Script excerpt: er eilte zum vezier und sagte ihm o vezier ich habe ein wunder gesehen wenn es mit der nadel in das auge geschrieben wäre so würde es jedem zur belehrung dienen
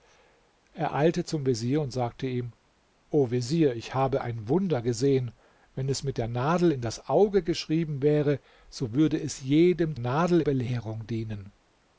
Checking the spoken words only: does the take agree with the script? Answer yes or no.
no